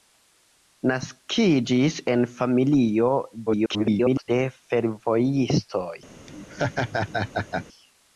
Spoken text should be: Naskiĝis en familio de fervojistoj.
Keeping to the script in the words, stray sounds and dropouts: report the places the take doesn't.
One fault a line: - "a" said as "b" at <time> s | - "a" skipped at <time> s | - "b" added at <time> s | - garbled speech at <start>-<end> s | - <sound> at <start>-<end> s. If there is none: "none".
- garbled speech at 3.5-4.3 s
- laugh at 6.3-7.7 s